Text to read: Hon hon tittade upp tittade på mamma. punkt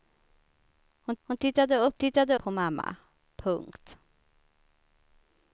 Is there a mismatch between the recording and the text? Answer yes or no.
no